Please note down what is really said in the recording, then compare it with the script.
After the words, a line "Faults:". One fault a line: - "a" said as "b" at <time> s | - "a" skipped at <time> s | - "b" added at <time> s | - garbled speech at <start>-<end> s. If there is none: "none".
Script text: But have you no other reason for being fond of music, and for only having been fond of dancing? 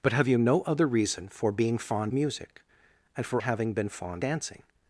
But have you no other reason for being fond music, and for having been fond dancing?
Faults:
- "of" skipped at 2.1 s
- "only" skipped at 3.4 s
- "of" skipped at 4.2 s